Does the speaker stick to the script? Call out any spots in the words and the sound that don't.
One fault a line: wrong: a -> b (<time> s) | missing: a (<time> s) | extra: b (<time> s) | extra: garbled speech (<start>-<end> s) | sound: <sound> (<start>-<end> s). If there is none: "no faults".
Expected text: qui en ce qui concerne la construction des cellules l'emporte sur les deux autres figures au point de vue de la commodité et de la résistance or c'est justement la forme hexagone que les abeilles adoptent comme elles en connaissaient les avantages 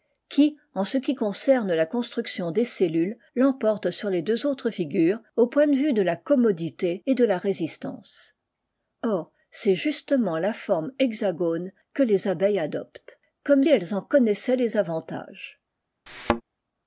sound: thud (16.1-16.4 s)